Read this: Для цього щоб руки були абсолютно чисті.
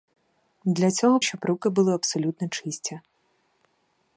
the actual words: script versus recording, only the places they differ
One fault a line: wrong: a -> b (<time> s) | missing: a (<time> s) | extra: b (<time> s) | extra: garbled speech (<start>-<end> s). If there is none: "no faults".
no faults